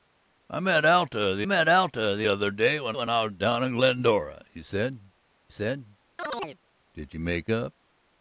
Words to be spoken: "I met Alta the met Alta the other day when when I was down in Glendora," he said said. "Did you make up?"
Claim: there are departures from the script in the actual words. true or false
false